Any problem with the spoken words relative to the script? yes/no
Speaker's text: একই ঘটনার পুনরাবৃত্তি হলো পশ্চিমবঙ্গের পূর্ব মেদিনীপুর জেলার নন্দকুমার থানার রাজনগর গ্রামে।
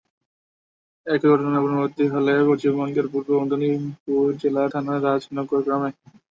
yes